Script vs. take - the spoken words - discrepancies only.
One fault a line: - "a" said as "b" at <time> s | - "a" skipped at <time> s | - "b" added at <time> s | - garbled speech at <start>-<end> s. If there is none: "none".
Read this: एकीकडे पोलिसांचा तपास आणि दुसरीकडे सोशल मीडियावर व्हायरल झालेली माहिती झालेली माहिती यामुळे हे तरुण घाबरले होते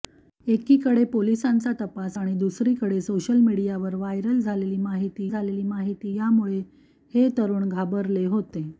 none